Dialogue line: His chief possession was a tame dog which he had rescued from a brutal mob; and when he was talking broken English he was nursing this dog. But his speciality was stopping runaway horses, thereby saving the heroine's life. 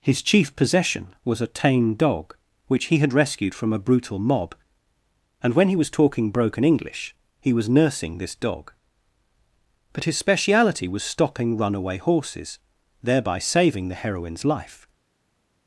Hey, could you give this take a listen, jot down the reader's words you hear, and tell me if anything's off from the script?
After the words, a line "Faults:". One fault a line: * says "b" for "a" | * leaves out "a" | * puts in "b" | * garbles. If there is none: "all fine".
His chief possession was a tame dog which he had rescued from a brutal mob; and when he was talking broken English he was nursing this dog. But his speciality was stopping runaway horses, thereby saving the heroine's life.
Faults:
all fine